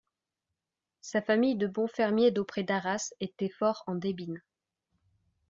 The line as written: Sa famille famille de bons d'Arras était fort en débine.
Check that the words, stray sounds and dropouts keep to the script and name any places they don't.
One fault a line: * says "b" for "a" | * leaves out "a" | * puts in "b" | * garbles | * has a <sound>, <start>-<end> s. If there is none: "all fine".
* leaves out "famille"
* puts in "fermiers d'auprès"